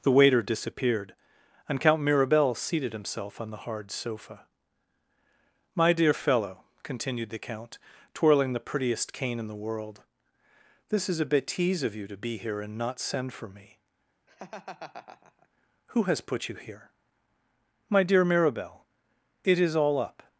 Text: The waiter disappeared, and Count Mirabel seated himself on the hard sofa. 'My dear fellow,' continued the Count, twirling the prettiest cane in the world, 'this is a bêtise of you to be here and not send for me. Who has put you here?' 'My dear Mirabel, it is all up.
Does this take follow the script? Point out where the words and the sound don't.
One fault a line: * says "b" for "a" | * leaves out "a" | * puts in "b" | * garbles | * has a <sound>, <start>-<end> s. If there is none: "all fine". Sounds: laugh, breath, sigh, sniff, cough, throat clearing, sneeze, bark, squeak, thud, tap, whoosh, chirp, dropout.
* has a laugh, 14.3-15.5 s